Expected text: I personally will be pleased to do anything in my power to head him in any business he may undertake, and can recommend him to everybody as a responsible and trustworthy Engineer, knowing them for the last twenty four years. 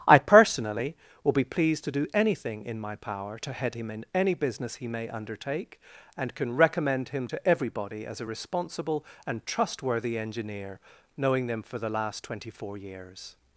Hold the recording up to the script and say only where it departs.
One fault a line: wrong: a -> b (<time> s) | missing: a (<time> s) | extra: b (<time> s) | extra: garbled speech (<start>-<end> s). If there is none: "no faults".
no faults